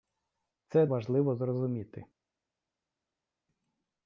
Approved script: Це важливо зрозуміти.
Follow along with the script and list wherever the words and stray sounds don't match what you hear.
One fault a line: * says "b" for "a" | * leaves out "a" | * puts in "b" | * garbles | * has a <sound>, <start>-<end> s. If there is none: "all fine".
all fine